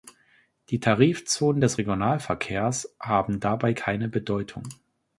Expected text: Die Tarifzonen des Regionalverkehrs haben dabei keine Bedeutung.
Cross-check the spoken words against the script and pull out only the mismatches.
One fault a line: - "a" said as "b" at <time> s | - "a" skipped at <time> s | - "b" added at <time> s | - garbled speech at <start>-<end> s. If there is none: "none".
none